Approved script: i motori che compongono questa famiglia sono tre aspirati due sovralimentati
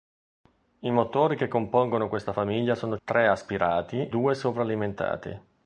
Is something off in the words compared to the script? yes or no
no